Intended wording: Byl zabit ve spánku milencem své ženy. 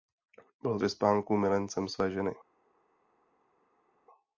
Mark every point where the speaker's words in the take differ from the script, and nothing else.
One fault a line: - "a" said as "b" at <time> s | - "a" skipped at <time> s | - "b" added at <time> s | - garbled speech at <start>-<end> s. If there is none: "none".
- "zabit" skipped at 0.8 s